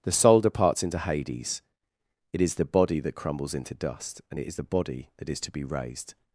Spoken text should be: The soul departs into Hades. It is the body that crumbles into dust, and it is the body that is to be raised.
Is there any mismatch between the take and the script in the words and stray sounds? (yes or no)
no